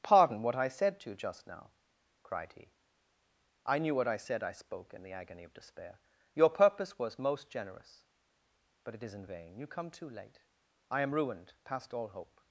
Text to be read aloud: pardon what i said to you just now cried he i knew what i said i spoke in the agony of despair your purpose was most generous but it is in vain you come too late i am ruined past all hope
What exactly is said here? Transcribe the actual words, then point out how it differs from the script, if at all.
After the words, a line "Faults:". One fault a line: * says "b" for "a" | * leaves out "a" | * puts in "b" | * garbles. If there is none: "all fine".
pardon what i said to you just now cried he i knew what i said i spoke in the agony of despair your purpose was most generous but it is in vain you come too late i am ruined past all hope
Faults:
all fine